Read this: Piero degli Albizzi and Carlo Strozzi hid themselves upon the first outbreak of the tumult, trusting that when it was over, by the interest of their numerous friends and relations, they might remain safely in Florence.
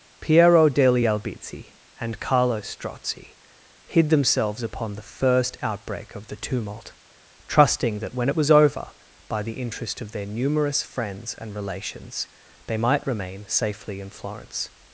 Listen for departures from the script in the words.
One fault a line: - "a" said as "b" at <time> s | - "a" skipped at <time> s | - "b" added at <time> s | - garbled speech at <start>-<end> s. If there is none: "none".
none